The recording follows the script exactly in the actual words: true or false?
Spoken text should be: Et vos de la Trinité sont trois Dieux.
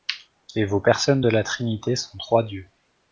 false